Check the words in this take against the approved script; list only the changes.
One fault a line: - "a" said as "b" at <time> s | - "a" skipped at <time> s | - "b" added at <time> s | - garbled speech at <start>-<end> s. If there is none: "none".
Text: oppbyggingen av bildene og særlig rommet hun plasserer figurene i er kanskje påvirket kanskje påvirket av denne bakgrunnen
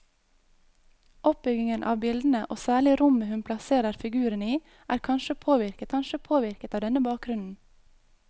none